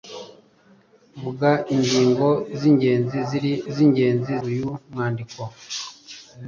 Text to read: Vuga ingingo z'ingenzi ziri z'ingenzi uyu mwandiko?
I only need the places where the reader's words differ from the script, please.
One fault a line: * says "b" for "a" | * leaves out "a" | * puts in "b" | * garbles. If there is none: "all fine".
all fine